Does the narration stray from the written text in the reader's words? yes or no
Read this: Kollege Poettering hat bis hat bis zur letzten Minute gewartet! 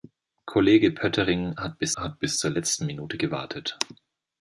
no